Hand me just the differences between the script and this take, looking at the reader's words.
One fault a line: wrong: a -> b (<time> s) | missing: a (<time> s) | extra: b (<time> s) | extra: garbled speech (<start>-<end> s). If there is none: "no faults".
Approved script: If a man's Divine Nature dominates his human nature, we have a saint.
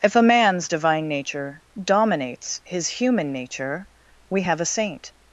no faults